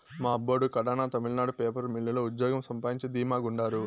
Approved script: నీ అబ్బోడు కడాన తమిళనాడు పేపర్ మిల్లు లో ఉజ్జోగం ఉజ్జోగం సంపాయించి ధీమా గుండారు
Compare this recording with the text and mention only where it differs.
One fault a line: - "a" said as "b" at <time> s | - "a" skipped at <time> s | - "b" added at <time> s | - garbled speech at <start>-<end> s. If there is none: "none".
- "నీ" said as "మా" at 0.1 s
- "ఉజ్జోగం" skipped at 2.6 s